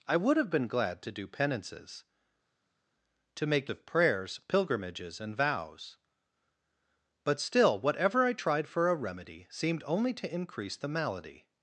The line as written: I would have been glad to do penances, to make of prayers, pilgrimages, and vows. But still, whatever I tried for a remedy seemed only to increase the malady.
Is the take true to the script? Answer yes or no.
yes